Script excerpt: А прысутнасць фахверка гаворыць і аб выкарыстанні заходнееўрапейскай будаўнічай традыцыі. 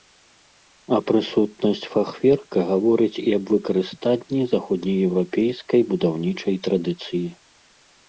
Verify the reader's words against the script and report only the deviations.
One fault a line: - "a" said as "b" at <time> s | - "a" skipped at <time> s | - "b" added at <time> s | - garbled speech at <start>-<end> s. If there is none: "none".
none